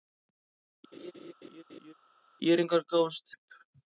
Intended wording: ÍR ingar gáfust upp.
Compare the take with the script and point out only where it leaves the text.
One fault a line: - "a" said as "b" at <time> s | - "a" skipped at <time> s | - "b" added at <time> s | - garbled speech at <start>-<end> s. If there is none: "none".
none